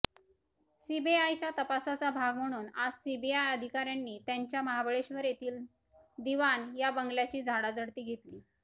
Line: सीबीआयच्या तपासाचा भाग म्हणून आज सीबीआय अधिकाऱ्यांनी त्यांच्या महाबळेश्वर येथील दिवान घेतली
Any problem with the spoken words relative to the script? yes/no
yes